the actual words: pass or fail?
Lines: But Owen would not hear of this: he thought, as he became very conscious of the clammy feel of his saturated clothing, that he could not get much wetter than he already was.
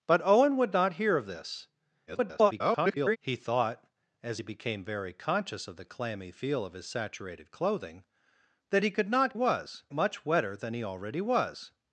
fail